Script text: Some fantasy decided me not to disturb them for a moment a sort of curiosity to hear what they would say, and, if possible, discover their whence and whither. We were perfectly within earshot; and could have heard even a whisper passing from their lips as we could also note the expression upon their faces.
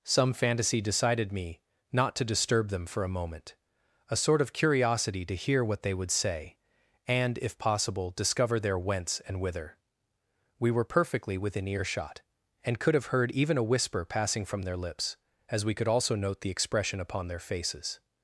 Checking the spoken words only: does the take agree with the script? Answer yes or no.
yes